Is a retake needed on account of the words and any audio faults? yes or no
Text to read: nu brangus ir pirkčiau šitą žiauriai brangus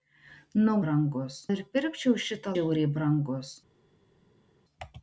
no